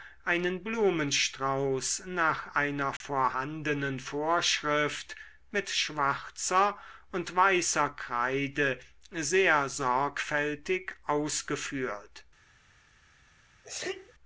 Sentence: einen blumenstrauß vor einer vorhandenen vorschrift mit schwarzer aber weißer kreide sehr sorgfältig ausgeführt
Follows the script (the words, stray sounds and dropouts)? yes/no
no